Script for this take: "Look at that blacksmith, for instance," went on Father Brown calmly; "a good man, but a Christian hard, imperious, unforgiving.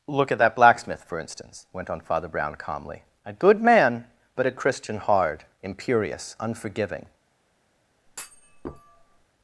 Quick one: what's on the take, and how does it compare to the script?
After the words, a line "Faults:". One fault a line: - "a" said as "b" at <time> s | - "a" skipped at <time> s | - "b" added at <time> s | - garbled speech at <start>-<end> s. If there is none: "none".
"Look at that blacksmith, for instance," went on Father Brown calmly; "a good man, but a Christian hard, imperious, unforgiving.
Faults:
none